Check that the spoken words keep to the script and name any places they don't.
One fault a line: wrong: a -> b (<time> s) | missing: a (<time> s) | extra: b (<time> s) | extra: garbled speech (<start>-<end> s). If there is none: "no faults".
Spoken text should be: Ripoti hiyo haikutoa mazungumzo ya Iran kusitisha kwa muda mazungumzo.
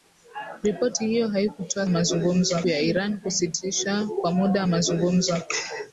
no faults